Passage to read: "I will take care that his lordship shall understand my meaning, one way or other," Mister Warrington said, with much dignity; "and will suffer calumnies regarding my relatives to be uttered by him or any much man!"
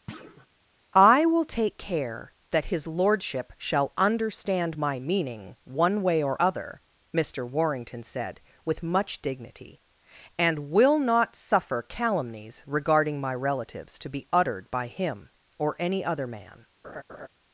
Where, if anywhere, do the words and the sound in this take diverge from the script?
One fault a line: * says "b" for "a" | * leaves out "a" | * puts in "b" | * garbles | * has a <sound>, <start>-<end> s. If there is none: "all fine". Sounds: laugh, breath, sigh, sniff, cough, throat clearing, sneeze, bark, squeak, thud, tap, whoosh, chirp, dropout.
* has a thud, 0.1-0.5 s
* puts in "not"
* says "other" for "much"
* has a laugh, 16.8-17.3 s